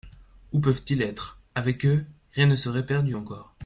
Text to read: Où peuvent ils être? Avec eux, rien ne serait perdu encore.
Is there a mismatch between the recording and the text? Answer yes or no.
no